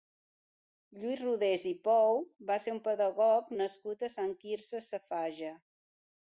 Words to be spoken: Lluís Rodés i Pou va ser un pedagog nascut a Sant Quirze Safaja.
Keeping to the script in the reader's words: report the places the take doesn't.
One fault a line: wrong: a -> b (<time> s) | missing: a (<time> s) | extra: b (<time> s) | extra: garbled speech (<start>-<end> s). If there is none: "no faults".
no faults